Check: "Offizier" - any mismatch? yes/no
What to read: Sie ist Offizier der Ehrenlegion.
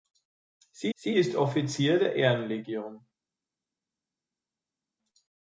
no